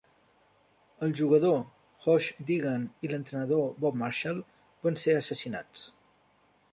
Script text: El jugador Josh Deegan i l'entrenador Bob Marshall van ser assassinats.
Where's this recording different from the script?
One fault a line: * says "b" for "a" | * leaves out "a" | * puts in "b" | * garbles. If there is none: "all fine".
all fine